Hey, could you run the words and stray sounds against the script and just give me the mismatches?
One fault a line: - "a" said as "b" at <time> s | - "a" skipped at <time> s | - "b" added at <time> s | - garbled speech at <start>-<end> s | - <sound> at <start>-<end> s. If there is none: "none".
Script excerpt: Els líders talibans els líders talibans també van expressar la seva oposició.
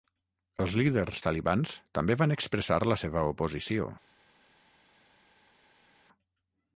- "els líders talibans" skipped at 1.7 s